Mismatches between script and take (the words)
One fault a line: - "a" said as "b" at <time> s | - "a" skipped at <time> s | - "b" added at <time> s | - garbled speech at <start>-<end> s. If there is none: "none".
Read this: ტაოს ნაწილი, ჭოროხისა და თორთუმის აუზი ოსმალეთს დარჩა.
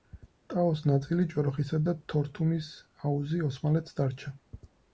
none